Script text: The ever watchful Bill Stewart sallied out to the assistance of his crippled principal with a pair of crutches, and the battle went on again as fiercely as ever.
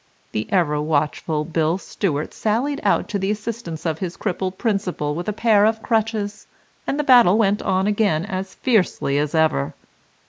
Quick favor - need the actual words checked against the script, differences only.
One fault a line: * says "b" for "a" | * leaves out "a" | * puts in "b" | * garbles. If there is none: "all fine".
all fine